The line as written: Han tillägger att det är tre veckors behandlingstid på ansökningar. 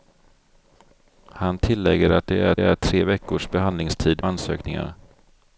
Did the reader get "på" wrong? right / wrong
wrong